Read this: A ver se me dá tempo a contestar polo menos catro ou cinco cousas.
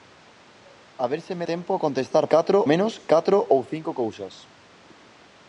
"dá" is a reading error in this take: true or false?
true